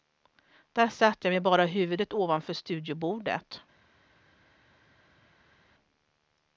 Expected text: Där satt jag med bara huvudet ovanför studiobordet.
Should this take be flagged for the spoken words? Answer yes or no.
no